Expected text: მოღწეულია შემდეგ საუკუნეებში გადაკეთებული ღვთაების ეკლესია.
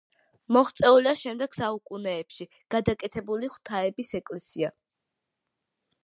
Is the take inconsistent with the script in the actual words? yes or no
no